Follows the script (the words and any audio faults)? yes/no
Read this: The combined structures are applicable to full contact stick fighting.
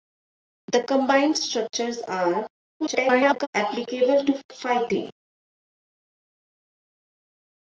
no